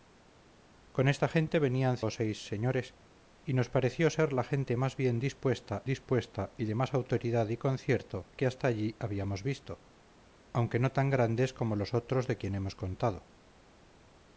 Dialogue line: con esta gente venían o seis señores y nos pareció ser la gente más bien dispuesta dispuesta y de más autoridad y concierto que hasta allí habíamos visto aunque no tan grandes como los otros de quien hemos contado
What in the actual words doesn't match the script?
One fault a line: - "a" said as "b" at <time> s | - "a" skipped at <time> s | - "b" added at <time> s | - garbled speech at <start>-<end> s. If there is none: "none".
none